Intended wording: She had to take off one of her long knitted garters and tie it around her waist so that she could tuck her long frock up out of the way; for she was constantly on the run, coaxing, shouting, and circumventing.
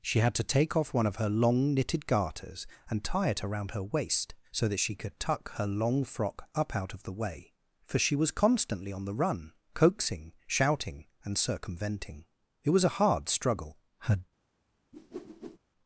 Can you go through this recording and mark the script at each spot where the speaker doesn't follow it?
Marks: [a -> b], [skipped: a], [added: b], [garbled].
She had to take off one of her long knitted garters and tie it around her waist so that she could tuck her long frock up out of the way; for she was constantly on the run, coaxing, shouting, and circumventing. [added: It was a hard struggle Her]